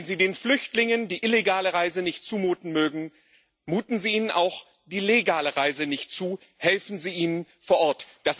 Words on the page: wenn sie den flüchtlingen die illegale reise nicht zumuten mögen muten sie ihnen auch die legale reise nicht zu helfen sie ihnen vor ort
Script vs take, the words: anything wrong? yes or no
no